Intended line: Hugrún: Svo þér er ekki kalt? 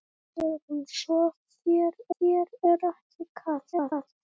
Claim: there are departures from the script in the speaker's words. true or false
true